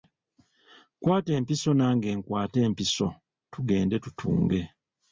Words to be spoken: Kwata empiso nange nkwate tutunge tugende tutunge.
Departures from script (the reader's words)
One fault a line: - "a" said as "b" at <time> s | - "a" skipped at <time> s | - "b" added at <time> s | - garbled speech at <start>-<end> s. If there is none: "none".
- "tutunge" said as "empiso" at 2.7 s